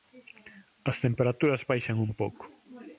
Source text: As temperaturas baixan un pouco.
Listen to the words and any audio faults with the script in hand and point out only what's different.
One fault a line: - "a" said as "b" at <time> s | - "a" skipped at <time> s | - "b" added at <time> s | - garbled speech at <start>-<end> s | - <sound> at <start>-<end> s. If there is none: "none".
none